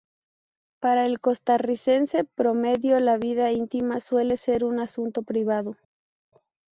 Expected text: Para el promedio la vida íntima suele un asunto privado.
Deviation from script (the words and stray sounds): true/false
true